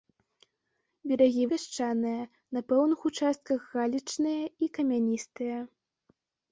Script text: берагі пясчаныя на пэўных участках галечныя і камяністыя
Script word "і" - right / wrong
right